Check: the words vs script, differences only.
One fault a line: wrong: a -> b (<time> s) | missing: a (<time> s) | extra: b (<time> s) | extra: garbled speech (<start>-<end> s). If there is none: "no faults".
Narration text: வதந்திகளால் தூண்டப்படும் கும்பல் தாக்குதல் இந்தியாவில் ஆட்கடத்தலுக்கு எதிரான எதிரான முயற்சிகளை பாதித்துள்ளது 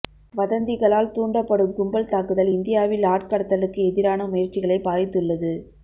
missing: எதிரான (4.3 s)